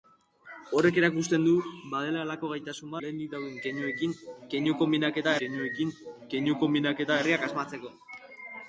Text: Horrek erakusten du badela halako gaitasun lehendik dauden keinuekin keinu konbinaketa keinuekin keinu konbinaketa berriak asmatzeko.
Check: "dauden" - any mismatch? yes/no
no